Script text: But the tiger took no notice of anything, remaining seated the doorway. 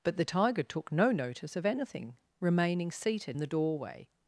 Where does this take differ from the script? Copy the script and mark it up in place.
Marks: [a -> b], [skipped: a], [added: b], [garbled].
But the tiger took no notice of anything, remaining seated the doorway.